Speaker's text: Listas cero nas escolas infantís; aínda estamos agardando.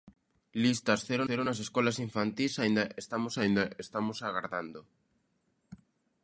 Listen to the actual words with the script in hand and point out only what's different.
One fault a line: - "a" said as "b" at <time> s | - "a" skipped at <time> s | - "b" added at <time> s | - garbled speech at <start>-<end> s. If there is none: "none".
- "cero" added at 1.3 s
- "aínda estamos" added at 3.4 s